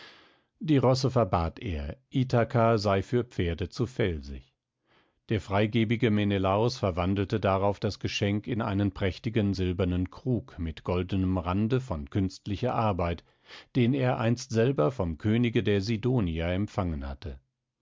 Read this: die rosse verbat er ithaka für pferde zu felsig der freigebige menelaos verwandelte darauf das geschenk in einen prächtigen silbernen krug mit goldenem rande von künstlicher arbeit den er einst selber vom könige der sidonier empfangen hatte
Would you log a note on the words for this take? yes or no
yes